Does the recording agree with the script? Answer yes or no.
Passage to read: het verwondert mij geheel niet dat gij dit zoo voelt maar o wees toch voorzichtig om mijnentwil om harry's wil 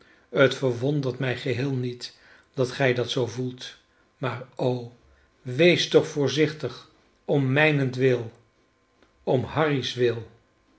no